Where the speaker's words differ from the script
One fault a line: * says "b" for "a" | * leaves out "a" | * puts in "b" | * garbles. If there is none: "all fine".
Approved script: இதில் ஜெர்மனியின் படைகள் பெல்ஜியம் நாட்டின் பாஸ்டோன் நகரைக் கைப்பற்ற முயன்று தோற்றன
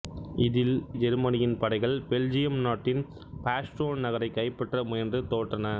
all fine